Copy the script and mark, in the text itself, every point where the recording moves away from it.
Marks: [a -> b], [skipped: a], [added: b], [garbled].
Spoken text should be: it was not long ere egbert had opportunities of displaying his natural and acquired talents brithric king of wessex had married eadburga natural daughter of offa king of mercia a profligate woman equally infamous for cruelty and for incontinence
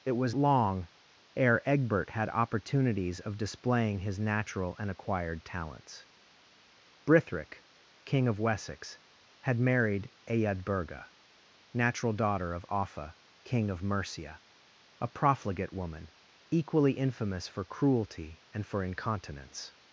it was [skipped: not] long ere egbert had opportunities of displaying his natural and acquired talents brithric king of wessex had married eadburga natural daughter of offa king of mercia a profligate woman equally infamous for cruelty and for incontinence